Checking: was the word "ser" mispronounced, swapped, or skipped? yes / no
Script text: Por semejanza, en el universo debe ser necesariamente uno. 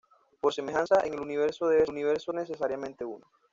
yes